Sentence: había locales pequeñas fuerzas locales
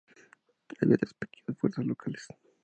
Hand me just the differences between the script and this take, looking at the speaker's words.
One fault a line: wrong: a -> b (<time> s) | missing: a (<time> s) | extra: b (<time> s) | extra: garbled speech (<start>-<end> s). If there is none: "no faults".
wrong: locales -> tres (0.9 s)